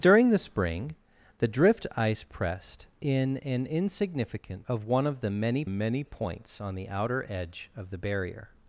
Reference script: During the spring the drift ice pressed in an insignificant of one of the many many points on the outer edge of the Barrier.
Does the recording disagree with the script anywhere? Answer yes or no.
no